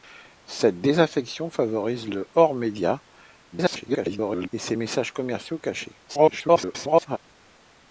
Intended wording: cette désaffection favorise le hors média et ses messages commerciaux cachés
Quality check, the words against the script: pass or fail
fail